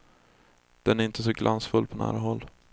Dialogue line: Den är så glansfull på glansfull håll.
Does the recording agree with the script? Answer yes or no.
no